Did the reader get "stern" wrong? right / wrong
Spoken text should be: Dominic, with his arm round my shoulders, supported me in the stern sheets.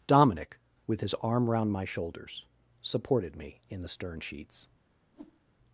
right